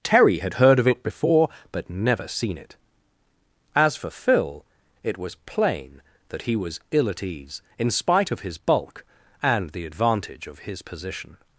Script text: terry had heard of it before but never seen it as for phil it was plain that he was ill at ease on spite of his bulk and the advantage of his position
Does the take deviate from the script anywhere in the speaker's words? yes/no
yes